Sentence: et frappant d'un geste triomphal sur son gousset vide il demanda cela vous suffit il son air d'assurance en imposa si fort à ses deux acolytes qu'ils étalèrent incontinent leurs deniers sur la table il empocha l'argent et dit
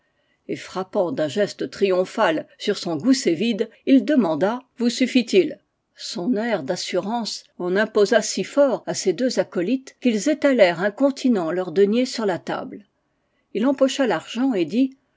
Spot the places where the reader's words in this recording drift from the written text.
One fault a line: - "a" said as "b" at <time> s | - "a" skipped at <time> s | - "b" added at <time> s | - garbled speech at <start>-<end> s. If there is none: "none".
- "cela" skipped at 4.6 s